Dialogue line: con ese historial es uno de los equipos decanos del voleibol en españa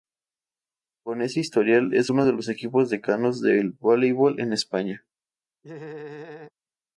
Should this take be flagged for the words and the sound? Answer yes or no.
yes